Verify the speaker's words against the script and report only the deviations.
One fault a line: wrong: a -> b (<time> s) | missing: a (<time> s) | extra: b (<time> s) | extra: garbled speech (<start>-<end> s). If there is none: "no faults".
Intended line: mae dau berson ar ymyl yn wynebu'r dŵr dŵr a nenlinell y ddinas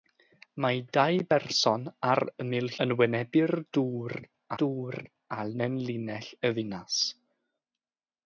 no faults